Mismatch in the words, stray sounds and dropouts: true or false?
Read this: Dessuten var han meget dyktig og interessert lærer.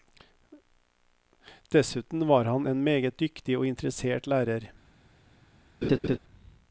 true